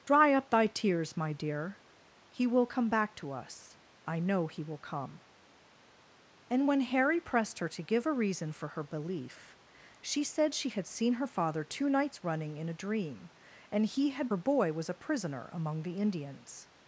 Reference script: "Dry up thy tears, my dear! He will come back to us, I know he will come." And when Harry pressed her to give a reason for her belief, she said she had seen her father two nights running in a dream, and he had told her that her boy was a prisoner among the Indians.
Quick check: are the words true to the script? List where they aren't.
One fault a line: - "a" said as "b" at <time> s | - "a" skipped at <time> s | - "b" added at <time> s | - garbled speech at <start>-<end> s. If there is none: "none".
- "told her that" skipped at 14.3 s